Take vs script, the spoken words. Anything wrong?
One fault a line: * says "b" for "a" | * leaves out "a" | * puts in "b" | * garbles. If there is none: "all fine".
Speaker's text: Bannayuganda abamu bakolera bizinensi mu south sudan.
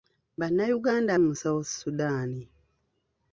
* leaves out "abamu bakolera bizinensi"